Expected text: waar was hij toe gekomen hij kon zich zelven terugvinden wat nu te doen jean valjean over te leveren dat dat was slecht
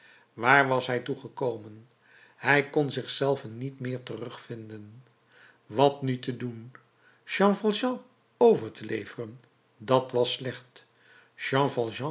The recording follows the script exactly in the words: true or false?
false